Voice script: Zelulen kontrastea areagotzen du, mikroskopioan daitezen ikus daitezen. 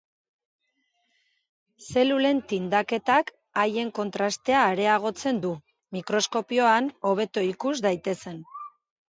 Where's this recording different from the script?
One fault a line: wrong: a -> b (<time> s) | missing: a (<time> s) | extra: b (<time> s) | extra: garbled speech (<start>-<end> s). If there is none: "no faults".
extra: tindaketak haien (2.5 s)
wrong: daitezen -> hobeto (7.1 s)